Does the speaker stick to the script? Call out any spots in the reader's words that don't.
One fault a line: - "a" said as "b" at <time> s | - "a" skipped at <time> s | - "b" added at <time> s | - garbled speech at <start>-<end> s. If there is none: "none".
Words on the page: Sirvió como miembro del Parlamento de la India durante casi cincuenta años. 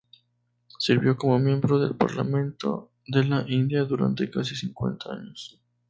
none